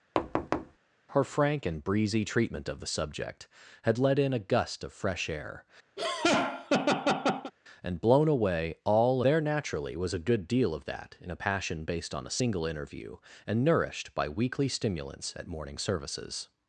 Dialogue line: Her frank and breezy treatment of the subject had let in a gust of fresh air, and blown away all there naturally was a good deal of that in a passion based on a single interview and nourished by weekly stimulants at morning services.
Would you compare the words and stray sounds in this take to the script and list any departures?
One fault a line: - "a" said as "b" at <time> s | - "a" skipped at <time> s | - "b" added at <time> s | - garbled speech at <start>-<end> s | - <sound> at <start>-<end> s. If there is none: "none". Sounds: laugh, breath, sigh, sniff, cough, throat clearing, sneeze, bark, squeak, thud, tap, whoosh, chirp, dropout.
- thud at 0.1-0.8 s
- laugh at 6.0-7.5 s